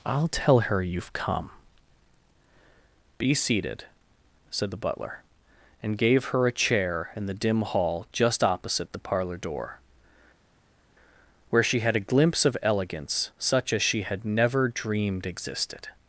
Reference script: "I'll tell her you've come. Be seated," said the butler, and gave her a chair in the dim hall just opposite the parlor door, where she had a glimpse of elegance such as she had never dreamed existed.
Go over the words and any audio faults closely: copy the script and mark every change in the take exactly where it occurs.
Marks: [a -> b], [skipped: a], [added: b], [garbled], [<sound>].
"I'll tell her you've come. Be seated," said the butler, and gave her a chair in the dim hall just opposite the parlor door, where she had a glimpse of elegance such as she had never dreamed existed.